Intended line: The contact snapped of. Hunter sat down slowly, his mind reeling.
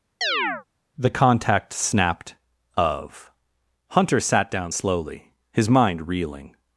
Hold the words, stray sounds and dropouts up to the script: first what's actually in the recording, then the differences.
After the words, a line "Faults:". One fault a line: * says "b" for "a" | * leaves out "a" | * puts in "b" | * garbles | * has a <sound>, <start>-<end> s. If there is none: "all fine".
The contact snapped of. Hunter sat down slowly, his mind reeling.
Faults:
* has a chirp, 0.2-0.6 s